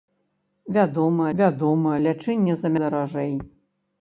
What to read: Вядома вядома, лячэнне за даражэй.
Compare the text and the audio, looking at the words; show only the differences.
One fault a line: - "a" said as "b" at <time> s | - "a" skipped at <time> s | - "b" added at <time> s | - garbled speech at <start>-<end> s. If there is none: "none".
none